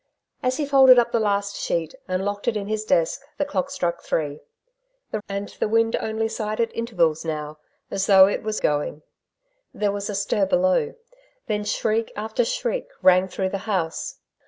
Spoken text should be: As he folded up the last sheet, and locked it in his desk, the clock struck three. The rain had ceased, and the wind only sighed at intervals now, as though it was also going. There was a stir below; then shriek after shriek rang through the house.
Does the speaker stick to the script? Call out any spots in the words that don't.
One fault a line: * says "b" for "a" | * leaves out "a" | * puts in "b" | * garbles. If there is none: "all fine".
* leaves out "rain had ceased"
* leaves out "also"